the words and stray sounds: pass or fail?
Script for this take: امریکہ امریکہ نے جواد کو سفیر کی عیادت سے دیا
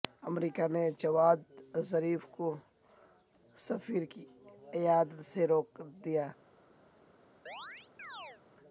fail